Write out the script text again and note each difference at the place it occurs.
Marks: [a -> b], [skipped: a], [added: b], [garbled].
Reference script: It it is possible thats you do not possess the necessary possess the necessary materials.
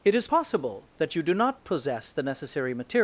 It [skipped: it] is possible [thats -> that] you do not possess the necessary [skipped: possess the necessary] materials.